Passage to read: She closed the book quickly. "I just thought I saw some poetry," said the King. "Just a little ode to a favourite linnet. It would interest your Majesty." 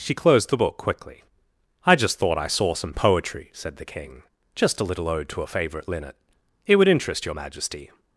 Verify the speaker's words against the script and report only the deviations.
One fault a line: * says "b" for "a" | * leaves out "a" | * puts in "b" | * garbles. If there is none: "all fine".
all fine